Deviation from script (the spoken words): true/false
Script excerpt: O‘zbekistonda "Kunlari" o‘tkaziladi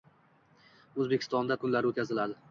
false